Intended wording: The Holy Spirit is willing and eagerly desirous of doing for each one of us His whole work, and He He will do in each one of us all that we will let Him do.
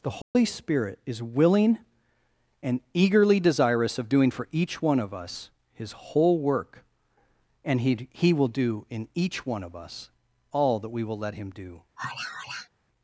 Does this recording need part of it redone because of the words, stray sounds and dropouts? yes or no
yes